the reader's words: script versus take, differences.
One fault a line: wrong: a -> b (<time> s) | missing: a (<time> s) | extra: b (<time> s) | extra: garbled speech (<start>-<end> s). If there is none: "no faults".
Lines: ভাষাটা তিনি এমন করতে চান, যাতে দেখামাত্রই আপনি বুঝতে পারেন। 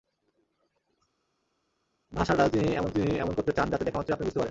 extra: তিনি এমন (2.9 s)